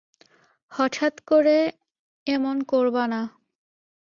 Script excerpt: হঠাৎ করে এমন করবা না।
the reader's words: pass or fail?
pass